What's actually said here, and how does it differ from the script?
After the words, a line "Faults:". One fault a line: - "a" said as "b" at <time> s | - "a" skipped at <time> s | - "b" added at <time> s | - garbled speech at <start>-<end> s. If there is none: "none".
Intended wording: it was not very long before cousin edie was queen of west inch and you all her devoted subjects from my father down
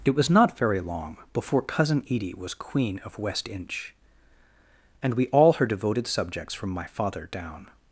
it was not very long before cousin edie was queen of west inch and we all her devoted subjects from my father down
Faults:
- "you" said as "we" at 5.1 s